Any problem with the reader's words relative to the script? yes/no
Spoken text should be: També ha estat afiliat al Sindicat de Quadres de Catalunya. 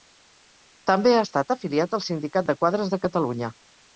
no